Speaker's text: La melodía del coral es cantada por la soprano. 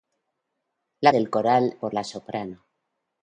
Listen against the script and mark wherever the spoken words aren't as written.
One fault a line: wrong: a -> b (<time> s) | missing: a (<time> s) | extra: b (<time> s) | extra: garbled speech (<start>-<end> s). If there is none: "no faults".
missing: melodía (1.1 s)
missing: es cantada (1.8 s)